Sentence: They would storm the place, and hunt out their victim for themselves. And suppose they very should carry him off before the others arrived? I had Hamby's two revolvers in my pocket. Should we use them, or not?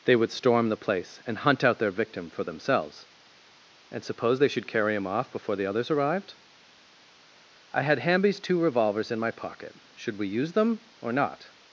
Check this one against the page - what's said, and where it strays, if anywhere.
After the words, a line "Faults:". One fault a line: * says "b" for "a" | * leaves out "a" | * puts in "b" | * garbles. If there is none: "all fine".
They would storm the place, and hunt out their victim for themselves. And suppose they should carry him off before the others arrived? I had Hamby's two revolvers in my pocket. Should we use them, or not?
Faults:
* leaves out "very"